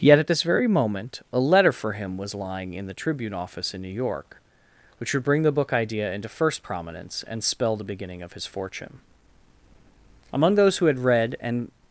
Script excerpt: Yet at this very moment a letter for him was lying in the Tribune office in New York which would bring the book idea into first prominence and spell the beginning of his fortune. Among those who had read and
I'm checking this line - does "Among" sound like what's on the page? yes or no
yes